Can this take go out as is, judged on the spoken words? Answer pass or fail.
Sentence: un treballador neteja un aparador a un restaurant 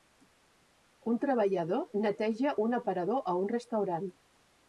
pass